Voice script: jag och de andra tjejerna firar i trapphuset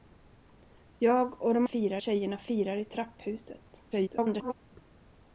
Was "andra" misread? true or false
true